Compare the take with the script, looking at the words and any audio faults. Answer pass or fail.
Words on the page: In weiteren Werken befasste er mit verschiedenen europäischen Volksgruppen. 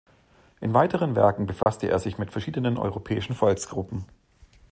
fail